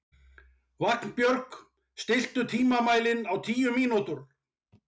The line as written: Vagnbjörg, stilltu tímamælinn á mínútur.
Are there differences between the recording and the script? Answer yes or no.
yes